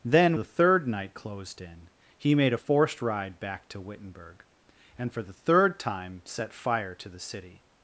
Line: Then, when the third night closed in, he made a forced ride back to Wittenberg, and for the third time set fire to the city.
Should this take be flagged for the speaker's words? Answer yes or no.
yes